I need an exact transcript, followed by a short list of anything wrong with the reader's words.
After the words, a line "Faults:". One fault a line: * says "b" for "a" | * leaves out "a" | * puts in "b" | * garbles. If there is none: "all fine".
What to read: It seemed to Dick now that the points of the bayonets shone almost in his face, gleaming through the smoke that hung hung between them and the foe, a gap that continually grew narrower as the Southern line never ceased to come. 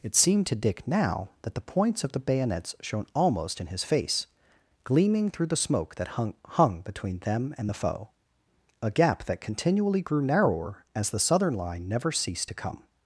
It seemed to Dick now that the points of the bayonets shone almost in his face, gleaming through the smoke that hung hung between them and the foe, a gap that continually grew narrower as the Southern line never ceased to come.
Faults:
all fine